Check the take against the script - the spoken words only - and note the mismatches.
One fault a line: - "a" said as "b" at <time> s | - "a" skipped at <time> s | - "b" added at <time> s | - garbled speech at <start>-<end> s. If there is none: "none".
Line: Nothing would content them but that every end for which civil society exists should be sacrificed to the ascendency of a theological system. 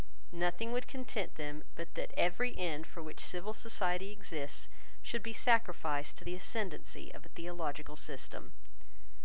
none